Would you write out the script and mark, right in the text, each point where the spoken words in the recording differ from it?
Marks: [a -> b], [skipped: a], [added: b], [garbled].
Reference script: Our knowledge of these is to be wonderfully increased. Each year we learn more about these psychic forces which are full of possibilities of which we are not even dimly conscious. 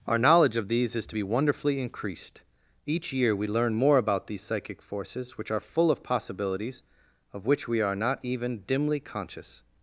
Our knowledge of these is to be wonderfully increased. Each year we learn more about these psychic forces which are full of possibilities of which we are not even dimly conscious.